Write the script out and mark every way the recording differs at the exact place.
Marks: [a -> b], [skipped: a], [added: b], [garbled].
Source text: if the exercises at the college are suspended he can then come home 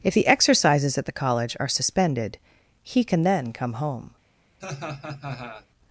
if the exercises at the college are suspended he can then come home